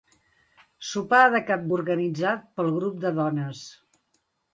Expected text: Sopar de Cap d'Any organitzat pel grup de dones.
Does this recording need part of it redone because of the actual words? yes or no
yes